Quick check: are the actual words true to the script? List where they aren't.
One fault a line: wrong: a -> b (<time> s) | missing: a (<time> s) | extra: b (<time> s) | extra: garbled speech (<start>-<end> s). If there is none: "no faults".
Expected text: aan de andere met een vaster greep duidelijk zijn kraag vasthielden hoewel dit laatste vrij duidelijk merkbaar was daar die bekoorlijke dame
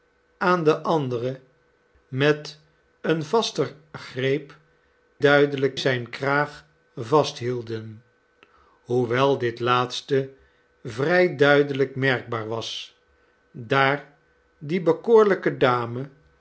no faults